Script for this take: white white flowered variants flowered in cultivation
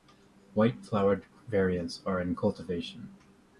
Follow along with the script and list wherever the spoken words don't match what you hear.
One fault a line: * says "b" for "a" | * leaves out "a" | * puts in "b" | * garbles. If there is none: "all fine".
* leaves out "white"
* says "are" for "flowered"